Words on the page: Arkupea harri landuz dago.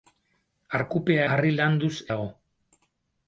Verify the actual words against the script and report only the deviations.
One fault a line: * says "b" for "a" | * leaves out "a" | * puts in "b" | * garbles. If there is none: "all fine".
all fine